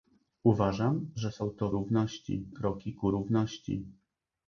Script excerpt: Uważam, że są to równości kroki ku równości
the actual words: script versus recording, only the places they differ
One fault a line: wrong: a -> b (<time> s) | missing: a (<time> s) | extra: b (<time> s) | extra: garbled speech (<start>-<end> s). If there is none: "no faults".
no faults